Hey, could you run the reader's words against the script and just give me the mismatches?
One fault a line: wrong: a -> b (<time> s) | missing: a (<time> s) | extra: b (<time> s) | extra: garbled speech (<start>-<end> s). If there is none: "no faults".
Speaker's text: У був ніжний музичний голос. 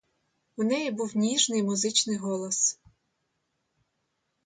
extra: неї (0.6 s)